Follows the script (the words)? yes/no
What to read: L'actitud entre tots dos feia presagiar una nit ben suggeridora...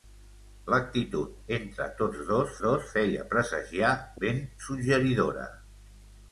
no